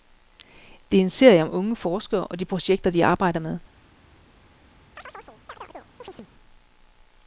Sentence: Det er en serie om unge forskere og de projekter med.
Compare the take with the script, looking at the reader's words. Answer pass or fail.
fail